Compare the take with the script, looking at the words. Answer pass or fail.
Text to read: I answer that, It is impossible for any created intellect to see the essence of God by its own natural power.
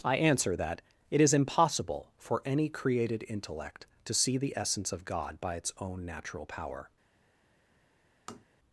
pass